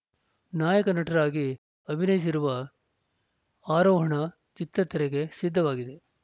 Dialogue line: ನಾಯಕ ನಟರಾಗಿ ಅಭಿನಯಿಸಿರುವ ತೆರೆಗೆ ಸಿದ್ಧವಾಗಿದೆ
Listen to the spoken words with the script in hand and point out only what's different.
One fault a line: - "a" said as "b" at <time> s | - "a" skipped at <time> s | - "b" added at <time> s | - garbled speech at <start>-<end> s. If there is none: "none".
- "ಆರೋಹಣ ಚಿತ್ರ" added at 3.7 s